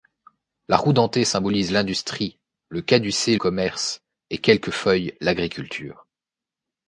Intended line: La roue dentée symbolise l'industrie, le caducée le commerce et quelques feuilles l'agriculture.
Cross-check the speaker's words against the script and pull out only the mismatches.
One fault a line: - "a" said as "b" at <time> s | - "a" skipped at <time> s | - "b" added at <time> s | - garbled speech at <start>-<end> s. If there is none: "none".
- "le" skipped at 3.4 s